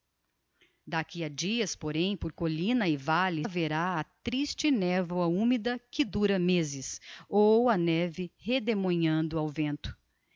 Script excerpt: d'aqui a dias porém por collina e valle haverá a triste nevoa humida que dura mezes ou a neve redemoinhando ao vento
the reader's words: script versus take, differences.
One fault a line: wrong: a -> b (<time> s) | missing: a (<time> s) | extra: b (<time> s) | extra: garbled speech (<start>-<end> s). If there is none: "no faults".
no faults